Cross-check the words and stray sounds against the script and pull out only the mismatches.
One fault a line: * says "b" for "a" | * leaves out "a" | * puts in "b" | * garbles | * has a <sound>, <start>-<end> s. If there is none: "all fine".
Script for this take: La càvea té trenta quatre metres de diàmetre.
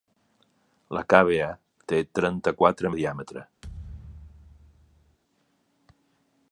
* leaves out "metres"
* has a thud, 3.6-5.2 s